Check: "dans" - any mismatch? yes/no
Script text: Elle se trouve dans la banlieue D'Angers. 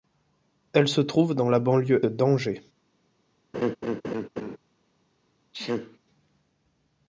no